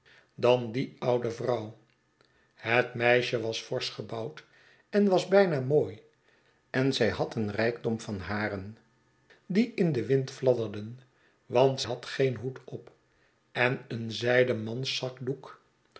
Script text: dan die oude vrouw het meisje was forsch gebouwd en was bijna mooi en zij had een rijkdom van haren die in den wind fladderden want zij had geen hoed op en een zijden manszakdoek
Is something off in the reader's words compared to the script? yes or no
yes